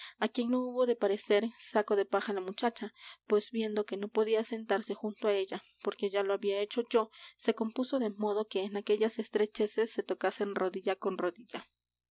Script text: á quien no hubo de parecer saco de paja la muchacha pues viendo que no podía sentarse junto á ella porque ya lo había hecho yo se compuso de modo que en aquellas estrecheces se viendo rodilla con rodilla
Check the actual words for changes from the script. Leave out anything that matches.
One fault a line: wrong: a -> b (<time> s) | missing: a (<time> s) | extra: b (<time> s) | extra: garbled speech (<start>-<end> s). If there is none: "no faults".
wrong: viendo -> tocasen (10.0 s)